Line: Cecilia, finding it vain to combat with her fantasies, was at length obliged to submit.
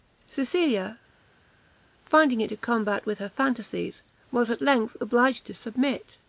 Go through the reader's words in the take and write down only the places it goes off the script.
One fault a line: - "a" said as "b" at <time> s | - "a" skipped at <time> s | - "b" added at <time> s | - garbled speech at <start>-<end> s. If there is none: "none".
- "vain" skipped at 2.5 s